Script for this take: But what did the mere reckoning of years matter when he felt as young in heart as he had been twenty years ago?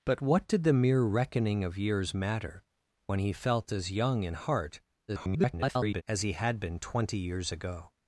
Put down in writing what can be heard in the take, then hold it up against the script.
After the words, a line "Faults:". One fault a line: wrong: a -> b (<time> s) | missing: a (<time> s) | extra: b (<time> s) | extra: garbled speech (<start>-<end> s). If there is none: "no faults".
But what did the mere reckoning of years matter when he felt as young in heart [garbled] as he had been twenty years ago?
Faults:
extra: garbled speech (5.1-6.0 s)